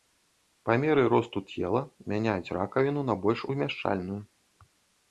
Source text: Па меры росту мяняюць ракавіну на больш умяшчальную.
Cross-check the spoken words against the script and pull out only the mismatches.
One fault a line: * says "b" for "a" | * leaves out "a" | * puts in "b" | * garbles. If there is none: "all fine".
* puts in "цела"